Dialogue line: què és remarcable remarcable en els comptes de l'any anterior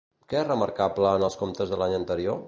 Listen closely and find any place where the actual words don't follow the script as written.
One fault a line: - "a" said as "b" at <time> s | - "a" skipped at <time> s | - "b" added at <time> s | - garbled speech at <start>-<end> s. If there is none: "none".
- "remarcable" skipped at 1.1 s